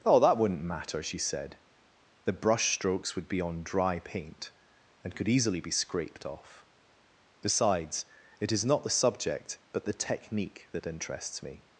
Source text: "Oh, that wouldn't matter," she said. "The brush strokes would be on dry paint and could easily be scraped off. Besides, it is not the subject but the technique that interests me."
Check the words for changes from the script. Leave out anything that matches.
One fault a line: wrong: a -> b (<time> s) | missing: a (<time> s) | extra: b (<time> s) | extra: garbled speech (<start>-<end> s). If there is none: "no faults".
no faults